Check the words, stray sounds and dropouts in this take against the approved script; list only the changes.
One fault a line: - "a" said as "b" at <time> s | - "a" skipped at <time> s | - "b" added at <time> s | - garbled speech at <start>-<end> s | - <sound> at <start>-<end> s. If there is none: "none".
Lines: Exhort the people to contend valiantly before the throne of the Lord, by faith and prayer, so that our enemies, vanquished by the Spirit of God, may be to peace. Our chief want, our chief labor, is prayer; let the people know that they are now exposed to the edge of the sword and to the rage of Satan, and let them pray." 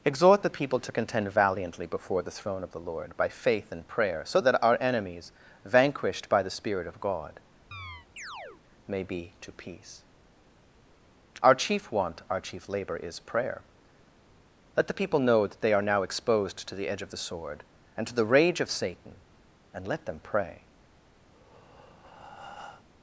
- chirp at 7.7-8.6 s
- breath at 21.3-22.8 s